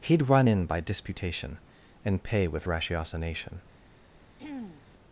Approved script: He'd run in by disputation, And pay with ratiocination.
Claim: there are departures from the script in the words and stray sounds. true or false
true